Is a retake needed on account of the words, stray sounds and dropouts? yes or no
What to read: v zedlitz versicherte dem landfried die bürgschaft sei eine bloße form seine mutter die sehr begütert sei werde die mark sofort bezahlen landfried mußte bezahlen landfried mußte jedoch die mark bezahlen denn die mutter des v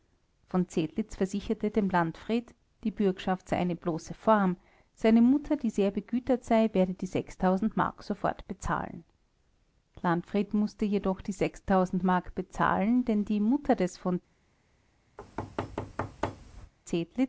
yes